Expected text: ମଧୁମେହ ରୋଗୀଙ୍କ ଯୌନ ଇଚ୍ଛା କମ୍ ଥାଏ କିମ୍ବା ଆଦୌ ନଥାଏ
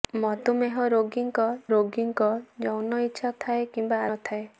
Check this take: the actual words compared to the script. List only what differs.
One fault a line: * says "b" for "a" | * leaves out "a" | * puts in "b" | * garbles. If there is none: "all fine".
* puts in "ରୋଗୀଙ୍କ"
* leaves out "କମ୍"
* leaves out "ଆଦୌ"